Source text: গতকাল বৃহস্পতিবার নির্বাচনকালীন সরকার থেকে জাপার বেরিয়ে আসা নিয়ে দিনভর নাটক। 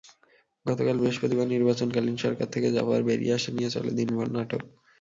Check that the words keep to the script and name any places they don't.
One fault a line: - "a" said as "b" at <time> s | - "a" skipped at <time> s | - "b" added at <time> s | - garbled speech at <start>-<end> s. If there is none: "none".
- "চলে" added at 3.7 s